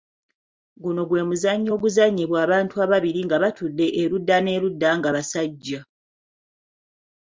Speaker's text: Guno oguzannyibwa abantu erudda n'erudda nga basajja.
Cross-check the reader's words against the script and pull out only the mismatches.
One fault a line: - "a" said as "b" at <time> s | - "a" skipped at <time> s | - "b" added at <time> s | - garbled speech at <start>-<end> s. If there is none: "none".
- "gwe muzannyo" added at 1.1 s
- "ababiri nga batudde" added at 2.8 s